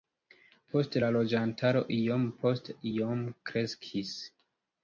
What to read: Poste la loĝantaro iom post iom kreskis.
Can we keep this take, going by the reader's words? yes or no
yes